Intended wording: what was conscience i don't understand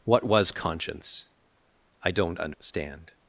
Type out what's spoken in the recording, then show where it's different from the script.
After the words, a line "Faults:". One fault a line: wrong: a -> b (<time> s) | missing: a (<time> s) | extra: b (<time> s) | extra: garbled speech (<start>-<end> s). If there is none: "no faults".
what was conscience i don't understand
Faults:
no faults